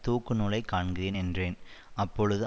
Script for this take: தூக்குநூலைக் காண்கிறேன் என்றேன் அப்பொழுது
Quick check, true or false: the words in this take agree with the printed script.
true